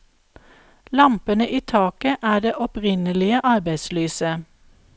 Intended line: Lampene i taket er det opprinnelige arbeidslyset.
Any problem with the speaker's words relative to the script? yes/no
no